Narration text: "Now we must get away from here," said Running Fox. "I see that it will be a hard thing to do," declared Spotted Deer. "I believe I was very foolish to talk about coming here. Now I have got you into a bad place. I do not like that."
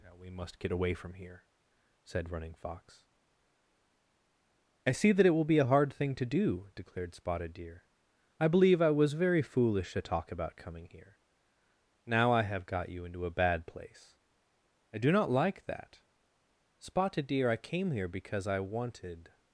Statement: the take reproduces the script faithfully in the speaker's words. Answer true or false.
false